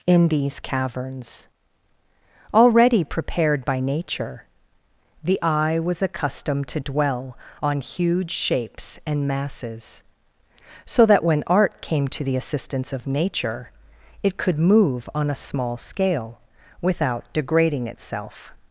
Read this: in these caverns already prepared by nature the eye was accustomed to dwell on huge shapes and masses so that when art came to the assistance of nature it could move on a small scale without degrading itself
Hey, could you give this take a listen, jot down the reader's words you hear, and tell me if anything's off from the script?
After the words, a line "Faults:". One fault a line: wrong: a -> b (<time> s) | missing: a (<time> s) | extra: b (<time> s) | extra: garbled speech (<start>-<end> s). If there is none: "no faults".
in these caverns already prepared by nature the eye was accustomed to dwell on huge shapes and masses so that when art came to the assistance of nature it could move on a small scale without degrading itself
Faults:
no faults